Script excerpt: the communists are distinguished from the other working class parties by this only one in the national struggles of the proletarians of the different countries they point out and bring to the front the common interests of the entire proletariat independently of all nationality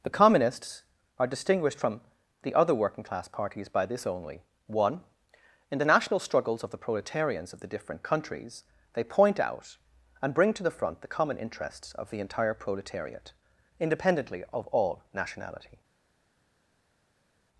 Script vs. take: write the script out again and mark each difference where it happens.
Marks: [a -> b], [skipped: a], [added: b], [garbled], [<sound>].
the communists are distinguished from the other working class parties by this only one in the national struggles of the proletarians of the different countries they point out and bring to the front the common interests of the entire proletariat independently of all nationality